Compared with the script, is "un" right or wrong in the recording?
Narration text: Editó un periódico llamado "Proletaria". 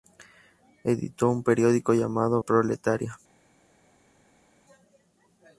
right